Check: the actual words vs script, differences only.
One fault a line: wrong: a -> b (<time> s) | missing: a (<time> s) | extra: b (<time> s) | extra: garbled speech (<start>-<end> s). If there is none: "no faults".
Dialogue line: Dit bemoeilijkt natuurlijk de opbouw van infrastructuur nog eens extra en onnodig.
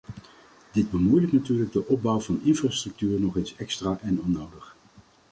no faults